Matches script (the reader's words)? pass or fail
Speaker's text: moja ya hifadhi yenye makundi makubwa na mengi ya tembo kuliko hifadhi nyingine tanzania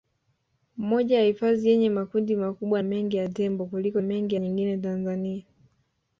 fail